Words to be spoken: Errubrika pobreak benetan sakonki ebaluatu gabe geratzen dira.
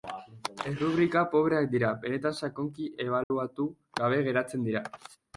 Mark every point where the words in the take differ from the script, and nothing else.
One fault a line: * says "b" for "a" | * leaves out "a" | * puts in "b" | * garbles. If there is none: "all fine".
* puts in "dira"